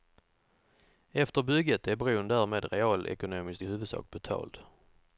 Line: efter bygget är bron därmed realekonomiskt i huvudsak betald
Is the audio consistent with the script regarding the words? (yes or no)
yes